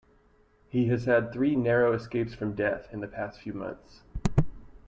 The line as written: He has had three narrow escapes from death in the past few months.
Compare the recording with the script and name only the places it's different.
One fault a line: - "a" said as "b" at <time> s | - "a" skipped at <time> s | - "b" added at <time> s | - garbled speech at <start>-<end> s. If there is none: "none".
none